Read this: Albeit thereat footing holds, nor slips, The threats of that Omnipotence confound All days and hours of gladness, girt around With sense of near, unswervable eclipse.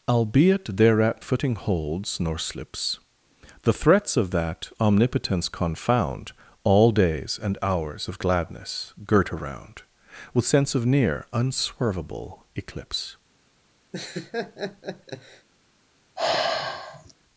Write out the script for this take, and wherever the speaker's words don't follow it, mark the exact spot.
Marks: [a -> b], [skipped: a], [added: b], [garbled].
Albeit thereat footing holds, nor slips, The threats of that Omnipotence confound All days and hours of gladness, girt around With sense of near, unswervable eclipse.